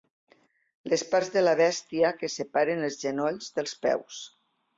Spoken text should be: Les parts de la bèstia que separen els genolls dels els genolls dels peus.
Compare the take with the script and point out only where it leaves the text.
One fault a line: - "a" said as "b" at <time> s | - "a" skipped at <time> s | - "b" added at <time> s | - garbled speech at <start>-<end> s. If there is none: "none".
- "els genolls dels" skipped at 3.8 s